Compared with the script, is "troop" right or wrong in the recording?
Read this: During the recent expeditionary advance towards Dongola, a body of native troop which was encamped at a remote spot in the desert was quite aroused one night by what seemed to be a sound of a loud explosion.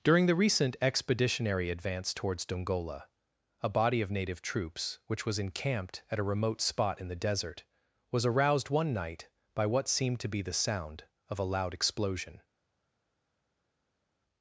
wrong